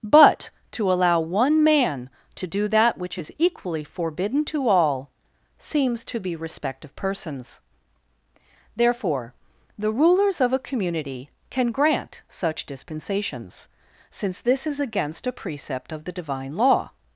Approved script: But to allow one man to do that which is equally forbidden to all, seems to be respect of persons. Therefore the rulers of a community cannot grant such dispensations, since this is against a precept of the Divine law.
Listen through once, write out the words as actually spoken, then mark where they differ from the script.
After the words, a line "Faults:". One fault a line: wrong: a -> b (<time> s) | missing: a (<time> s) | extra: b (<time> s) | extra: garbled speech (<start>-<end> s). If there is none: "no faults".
But to allow one man to do that which is equally forbidden to all, seems to be respect of persons. Therefore the rulers of a community can grant such dispensations, since this is against a precept of the Divine law.
Faults:
wrong: cannot -> can (11.5 s)